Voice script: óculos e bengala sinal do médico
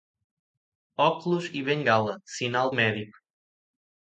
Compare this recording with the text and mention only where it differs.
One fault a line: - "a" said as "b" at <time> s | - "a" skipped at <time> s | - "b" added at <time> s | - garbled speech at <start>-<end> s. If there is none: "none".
- "do" skipped at 2.7 s